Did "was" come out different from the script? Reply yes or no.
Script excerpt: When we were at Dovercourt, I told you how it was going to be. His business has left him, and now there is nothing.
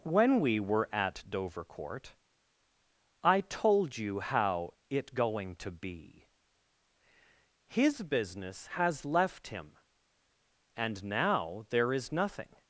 yes